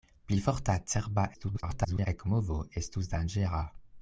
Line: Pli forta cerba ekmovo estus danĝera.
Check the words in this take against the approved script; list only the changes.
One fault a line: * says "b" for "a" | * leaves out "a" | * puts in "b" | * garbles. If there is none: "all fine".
* garbles